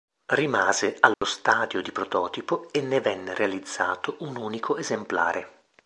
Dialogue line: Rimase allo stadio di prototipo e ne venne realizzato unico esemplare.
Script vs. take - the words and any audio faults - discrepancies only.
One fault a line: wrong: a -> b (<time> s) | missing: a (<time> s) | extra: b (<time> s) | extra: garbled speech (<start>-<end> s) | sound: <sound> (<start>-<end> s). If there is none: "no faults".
sound: dropout (1.1-1.2 s)
extra: un (4.2 s)